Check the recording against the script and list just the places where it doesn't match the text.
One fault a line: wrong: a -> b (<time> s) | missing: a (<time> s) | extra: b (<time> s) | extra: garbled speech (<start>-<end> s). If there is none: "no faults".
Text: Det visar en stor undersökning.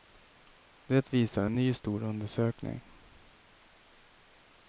extra: ny (1.5 s)